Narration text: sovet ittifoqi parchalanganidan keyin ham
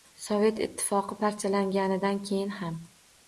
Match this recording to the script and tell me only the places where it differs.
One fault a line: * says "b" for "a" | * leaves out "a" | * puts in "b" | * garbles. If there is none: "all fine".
all fine